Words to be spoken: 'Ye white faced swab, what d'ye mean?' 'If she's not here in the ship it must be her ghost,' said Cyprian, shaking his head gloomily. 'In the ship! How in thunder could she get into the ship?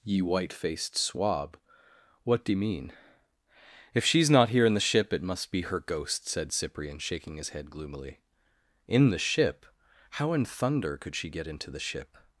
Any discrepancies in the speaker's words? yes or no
no